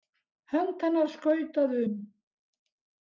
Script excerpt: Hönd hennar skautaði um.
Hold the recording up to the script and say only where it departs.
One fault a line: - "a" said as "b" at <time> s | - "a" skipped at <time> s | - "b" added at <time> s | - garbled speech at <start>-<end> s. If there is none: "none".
none